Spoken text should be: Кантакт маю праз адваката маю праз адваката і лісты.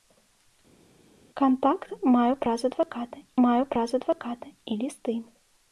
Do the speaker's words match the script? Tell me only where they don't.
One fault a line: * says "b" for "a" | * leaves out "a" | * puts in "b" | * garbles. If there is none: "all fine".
all fine